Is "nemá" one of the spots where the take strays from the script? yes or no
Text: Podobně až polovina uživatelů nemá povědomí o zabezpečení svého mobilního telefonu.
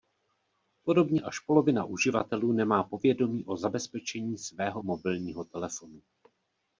no